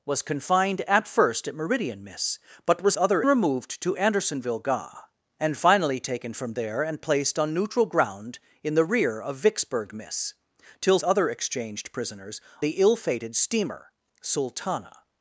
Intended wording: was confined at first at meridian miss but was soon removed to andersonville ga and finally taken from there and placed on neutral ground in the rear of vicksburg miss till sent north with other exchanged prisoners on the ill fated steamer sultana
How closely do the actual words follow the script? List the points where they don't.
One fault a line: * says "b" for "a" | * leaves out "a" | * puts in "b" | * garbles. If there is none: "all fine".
* says "other" for "soon"
* leaves out "sent north with"
* leaves out "on"